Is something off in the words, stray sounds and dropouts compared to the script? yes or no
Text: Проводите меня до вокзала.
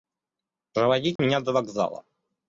yes